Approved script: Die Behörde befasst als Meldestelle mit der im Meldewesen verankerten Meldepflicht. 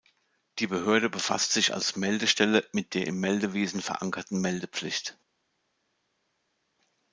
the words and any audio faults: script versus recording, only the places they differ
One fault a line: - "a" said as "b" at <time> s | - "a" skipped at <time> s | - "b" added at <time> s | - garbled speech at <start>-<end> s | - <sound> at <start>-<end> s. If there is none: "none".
- "sich" added at 1.5 s